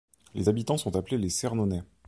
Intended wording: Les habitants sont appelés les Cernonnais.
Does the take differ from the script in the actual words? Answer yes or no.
no